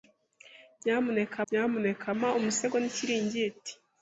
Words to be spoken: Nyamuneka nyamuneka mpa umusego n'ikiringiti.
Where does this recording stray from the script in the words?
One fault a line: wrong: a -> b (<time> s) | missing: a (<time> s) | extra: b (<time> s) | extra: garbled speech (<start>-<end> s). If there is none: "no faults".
no faults